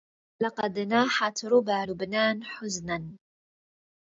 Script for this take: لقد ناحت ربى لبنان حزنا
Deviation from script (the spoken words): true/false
false